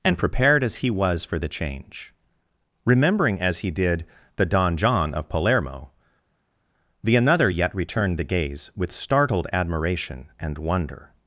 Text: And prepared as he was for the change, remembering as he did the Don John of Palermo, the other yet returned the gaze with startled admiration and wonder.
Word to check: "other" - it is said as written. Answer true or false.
false